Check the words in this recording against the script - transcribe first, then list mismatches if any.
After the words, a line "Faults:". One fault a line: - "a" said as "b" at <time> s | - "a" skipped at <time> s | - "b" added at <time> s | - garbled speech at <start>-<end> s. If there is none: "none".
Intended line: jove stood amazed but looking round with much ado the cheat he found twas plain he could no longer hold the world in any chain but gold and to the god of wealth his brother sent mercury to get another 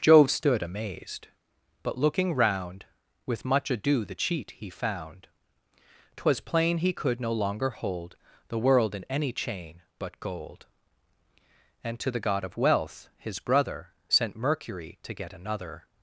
jove stood amazed but looking round with much ado the cheat he found twas plain he could no longer hold the world in any chain but gold and to the god of wealth his brother sent mercury to get another
Faults:
none